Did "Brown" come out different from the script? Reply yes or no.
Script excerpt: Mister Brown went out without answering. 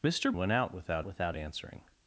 yes